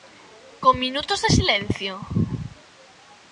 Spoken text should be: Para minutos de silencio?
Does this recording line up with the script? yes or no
no